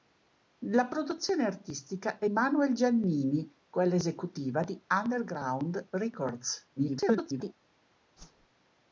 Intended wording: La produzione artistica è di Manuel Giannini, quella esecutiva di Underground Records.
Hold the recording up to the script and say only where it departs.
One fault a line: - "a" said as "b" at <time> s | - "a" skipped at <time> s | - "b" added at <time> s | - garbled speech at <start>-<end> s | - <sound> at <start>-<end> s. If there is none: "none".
- "di" skipped at 2.3 s
- garbled speech at 6.8-7.5 s
- whoosh at 8.2-8.5 s